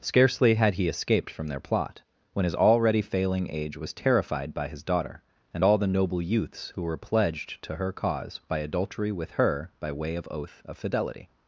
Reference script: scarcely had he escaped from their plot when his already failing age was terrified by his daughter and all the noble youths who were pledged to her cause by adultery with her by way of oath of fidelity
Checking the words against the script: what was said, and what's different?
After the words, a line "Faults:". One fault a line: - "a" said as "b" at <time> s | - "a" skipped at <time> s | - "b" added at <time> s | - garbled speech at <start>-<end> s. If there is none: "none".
scarcely had he escaped from their plot when his already failing age was terrified by his daughter and all the noble youths who were pledged to her cause by adultery with her by way of oath of fidelity
Faults:
none